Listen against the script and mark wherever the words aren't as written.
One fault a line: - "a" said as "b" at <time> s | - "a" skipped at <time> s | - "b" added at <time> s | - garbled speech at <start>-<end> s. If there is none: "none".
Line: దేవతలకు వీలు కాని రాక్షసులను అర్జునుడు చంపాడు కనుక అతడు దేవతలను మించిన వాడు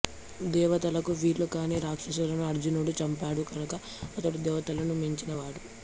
none